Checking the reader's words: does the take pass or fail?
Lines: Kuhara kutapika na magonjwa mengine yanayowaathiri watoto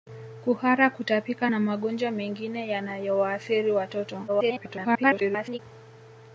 fail